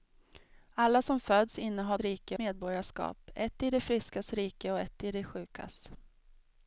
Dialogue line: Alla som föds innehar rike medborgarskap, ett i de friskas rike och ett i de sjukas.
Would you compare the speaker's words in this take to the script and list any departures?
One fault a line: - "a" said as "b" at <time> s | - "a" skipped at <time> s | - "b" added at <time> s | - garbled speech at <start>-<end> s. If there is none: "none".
none